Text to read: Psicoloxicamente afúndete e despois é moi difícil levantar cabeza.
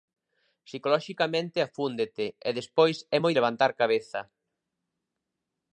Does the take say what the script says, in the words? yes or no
no